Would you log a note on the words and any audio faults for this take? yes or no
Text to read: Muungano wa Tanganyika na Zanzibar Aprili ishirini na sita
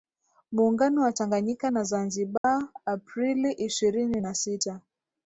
yes